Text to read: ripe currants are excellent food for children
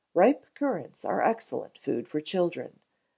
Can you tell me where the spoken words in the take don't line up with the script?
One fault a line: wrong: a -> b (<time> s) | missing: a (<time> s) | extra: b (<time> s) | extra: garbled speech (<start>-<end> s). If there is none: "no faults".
no faults